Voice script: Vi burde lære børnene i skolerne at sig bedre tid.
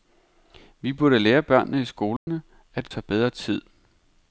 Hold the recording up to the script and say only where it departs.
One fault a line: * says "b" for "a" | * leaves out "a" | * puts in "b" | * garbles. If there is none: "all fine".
all fine